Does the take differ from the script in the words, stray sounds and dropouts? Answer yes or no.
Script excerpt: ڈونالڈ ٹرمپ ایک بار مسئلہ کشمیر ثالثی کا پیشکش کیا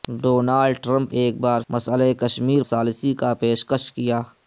no